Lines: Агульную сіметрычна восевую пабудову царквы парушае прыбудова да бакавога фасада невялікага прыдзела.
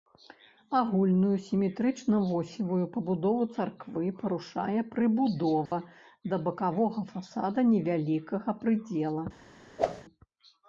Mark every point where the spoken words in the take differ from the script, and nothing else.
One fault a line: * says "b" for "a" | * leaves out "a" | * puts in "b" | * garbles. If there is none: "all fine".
all fine